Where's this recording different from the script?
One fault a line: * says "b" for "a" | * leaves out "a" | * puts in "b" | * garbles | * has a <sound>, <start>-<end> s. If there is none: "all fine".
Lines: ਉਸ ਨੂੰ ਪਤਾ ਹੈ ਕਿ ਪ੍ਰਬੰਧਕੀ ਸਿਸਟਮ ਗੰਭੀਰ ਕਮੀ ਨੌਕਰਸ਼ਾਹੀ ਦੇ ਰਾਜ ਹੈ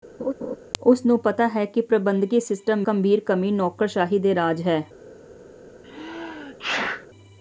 * has a laugh, 0.2-0.6 s
* has a sneeze, 5.8-7.1 s